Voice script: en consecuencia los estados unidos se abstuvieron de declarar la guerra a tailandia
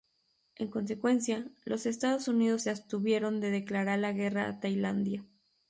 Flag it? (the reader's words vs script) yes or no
no